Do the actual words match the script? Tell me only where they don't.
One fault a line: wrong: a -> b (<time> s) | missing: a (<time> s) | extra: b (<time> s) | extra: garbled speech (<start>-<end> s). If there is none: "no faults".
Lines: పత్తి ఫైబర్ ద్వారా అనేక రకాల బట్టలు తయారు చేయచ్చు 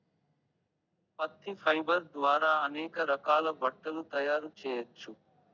no faults